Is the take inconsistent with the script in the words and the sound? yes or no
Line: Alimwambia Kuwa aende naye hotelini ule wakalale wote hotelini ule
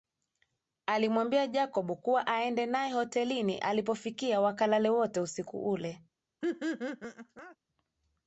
yes